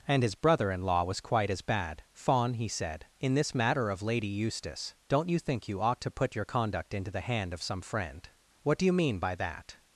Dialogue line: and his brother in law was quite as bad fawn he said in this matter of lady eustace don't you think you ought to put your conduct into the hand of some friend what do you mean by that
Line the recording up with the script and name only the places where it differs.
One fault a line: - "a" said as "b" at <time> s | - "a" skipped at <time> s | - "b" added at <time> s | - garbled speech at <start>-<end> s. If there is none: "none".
none